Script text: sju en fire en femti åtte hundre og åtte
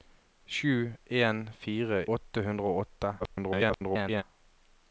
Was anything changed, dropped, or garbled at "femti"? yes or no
yes